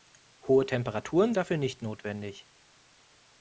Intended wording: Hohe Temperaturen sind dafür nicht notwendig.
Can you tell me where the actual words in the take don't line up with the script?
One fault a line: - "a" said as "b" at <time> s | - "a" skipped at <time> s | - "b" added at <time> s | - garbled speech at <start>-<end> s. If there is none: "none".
- "sind" skipped at 1.4 s